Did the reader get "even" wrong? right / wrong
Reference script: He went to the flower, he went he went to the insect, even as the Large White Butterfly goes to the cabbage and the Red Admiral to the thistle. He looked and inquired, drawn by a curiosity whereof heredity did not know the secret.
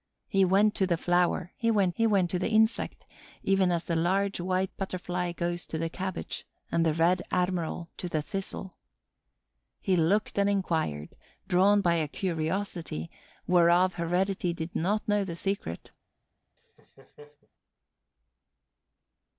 right